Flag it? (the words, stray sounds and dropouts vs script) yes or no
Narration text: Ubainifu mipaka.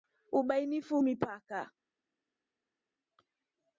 no